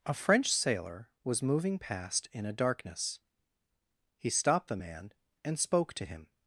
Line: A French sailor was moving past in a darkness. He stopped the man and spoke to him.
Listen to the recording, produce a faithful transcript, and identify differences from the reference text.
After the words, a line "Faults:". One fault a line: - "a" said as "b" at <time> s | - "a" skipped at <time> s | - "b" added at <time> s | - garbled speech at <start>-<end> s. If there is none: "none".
A French sailor was moving past in a darkness. He stopped the man and spoke to him.
Faults:
none